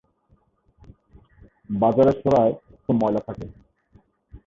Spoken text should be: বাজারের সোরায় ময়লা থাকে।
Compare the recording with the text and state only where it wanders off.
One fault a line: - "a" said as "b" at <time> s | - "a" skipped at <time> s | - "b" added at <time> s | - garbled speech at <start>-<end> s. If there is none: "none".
none